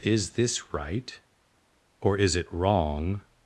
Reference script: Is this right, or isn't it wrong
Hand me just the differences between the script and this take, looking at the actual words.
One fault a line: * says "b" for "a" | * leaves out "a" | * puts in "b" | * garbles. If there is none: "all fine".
* says "is" for "isn't"